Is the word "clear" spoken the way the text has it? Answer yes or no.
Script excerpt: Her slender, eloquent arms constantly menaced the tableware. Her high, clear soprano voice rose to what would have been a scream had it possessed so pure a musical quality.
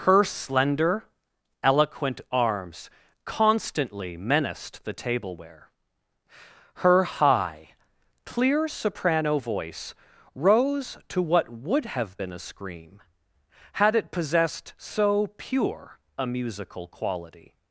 yes